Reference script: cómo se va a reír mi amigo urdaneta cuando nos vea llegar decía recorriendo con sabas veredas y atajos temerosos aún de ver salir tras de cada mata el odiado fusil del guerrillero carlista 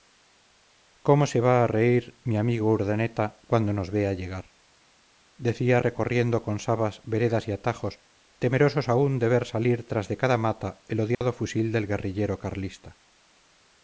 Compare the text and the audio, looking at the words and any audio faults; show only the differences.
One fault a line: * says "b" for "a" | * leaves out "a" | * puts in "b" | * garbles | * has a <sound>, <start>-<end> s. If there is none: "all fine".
* has a dropout, 11.1-11.2 s